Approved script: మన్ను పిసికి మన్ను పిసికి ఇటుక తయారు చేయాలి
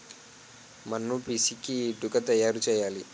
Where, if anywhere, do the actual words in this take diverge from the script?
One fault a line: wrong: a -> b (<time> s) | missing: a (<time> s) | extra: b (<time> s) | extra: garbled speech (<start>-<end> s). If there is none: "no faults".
missing: మన్ను పిసికి (1.8 s)